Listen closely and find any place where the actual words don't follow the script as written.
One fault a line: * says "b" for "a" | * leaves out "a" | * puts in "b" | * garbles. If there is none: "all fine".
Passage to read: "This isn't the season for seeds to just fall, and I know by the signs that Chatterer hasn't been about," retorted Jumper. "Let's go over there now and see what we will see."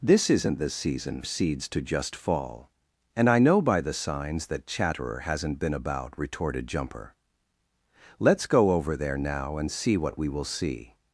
* leaves out "for"